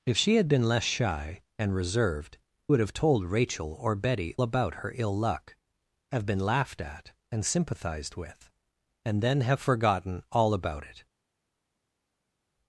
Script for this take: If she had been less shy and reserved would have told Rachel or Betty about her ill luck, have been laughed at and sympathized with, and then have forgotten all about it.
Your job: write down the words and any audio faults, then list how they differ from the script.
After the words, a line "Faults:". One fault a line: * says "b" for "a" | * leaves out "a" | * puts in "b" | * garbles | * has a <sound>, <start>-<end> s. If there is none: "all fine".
If she had been less shy and reserved would have told Rachel or Betty about her ill luck, have been laughed at and sympathized with, and then have forgotten all about it.
Faults:
all fine